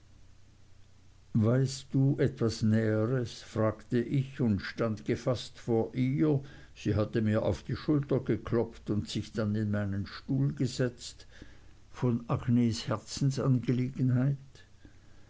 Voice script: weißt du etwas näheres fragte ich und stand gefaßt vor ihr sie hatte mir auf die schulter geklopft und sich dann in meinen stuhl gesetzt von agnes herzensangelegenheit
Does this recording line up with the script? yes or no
yes